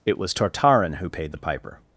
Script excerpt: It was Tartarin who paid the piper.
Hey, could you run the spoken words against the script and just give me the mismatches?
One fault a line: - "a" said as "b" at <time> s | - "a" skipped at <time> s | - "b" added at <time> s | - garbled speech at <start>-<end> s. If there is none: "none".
none